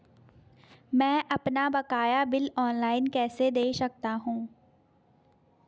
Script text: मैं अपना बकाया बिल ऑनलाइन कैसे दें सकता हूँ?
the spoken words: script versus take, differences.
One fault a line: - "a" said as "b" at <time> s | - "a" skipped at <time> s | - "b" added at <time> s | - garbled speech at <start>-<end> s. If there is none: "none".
none